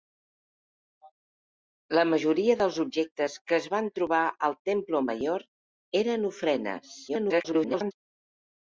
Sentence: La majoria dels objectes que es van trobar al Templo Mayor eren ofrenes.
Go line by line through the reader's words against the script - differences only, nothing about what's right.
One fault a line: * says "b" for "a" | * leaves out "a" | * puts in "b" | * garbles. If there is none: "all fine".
* garbles